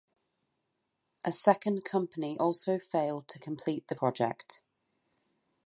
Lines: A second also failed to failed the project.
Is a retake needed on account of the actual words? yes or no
yes